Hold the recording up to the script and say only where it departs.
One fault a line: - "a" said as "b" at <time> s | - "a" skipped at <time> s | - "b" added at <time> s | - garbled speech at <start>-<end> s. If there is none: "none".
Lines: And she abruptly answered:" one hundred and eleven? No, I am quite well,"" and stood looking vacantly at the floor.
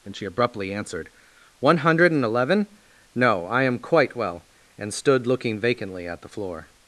none